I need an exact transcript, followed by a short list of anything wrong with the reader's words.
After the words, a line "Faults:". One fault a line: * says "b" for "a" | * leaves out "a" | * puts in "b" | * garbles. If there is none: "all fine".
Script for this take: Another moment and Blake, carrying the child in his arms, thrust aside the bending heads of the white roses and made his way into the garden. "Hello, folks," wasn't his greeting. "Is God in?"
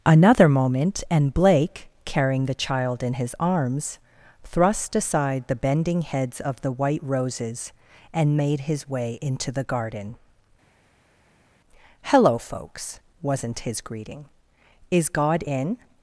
Another moment and Blake, carrying the child in his arms, thrust aside the bending heads of the white roses and made his way into the garden. "Hello, folks," wasn't his greeting. "Is God in?"
Faults:
all fine